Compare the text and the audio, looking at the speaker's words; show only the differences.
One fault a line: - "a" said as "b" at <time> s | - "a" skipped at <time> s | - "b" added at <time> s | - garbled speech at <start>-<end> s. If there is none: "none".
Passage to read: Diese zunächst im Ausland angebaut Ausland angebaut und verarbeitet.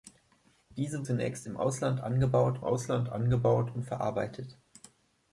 none